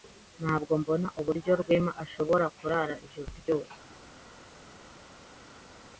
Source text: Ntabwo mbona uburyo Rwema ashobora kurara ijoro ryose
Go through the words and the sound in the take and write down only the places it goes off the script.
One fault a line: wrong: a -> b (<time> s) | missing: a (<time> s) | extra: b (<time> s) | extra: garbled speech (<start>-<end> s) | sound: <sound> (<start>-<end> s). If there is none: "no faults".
no faults